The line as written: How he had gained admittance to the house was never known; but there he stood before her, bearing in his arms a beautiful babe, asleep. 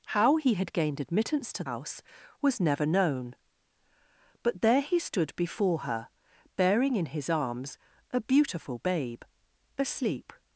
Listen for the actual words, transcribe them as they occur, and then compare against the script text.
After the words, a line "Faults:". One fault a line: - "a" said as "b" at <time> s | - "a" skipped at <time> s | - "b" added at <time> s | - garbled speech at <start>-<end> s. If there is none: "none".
How he had gained admittance to house was never known; but there he stood before her, bearing in his arms a beautiful babe, asleep.
Faults:
- "the" skipped at 1.6 s